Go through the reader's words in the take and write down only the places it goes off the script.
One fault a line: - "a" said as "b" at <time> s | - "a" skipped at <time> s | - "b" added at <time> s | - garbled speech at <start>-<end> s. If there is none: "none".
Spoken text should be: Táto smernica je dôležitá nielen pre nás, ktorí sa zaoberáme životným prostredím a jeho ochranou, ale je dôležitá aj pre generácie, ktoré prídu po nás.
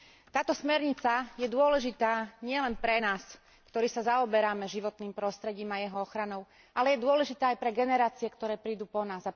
none